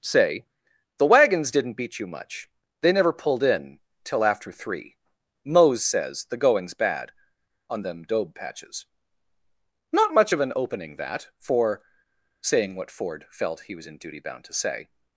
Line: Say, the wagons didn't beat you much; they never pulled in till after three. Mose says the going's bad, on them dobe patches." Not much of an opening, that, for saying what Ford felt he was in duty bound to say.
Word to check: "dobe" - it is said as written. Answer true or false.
true